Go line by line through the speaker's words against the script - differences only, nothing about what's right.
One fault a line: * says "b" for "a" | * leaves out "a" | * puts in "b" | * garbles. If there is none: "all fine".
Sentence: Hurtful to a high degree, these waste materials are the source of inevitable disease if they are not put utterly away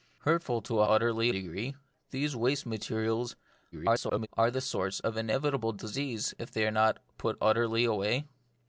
* says "utterly" for "high"
* garbles